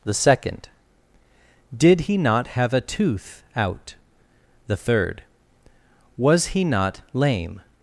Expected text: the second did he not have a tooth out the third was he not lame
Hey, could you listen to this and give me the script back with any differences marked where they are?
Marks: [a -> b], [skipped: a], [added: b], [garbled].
the second did he not have a tooth out the third was he not lame